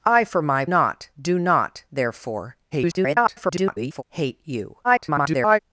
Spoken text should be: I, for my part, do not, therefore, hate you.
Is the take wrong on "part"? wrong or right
wrong